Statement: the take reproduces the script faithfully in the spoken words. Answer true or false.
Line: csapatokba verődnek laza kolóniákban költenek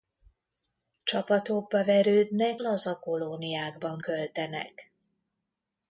true